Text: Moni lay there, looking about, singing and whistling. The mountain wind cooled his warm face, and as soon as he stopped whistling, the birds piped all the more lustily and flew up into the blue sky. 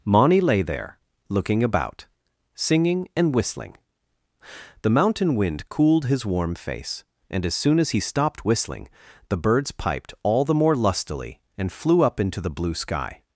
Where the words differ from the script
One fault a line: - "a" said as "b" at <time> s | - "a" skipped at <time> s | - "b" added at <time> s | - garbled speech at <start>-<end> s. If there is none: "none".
none